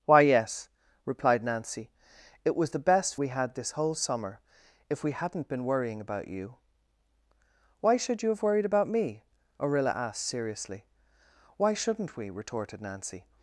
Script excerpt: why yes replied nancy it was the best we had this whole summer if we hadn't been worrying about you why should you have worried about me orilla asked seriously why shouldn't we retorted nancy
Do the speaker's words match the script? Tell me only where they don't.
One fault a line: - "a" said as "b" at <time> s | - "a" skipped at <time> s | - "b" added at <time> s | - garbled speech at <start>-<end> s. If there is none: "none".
none